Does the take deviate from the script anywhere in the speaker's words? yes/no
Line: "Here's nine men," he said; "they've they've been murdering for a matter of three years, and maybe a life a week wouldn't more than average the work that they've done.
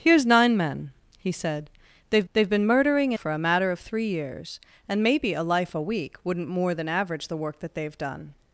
no